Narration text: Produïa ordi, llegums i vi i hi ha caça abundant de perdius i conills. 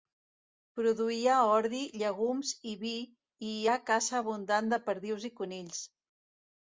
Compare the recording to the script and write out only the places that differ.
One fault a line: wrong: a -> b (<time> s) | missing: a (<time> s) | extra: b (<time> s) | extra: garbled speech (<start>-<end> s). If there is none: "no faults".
no faults